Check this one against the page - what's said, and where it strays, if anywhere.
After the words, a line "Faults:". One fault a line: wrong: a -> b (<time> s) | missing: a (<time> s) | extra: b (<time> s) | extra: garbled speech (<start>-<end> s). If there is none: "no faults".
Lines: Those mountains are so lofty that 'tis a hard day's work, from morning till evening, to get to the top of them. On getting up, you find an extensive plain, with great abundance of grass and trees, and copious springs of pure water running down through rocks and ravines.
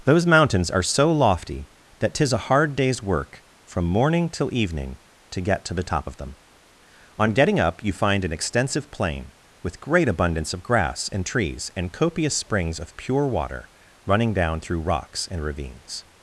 Those mountains are so lofty that 'tis a hard day's work, from morning till evening, to get to the top of them. On getting up, you find an extensive plain, with great abundance of grass and trees, and copious springs of pure water running down through rocks and ravines.
Faults:
no faults